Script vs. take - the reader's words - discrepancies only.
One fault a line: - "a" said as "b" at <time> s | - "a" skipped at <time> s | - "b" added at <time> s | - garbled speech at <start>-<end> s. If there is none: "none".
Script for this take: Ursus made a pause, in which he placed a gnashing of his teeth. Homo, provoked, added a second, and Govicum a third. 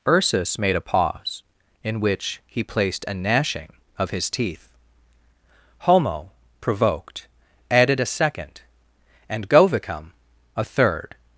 none